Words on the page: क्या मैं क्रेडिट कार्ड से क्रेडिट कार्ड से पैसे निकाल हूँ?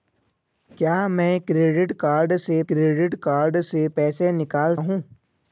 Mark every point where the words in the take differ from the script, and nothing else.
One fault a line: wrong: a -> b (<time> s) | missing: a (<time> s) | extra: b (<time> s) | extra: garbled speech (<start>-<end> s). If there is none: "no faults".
no faults